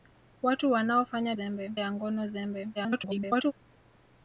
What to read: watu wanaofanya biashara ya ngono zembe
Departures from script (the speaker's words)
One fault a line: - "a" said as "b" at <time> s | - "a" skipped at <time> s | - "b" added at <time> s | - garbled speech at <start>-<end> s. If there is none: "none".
- "biashara" said as "zembe" at 1.3 s
- garbled speech at 2.8-3.5 s